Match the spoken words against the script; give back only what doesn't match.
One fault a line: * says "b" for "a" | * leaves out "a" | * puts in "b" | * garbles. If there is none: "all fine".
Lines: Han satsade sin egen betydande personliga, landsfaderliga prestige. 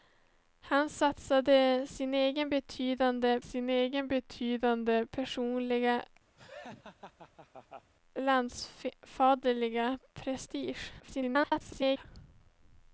* puts in "sin egen betydande"
* garbles